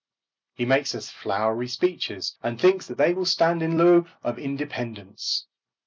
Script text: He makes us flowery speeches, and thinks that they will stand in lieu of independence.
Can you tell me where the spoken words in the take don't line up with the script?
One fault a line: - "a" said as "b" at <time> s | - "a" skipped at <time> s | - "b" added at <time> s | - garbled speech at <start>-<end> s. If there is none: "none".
none